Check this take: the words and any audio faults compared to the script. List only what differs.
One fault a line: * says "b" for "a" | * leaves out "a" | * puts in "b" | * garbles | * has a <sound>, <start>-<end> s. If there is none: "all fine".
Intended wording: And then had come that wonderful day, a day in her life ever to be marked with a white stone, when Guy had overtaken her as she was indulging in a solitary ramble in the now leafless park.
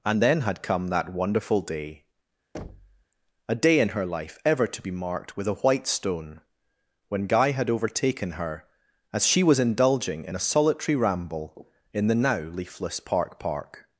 * has a thud, 2.5-3.0 s
* puts in "park"